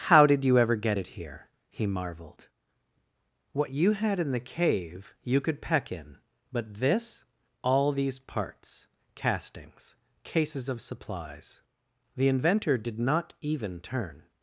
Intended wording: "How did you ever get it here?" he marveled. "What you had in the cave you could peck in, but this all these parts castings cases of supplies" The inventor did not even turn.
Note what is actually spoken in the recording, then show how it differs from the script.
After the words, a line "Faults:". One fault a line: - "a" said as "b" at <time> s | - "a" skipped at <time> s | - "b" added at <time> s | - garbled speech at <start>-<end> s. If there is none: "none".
"How did you ever get it here?" he marveled. "What you had in the cave you could peck in, but this all these parts castings cases of supplies" The inventor did not even turn.
Faults:
none